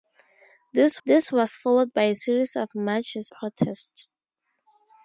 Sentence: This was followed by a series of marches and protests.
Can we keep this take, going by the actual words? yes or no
no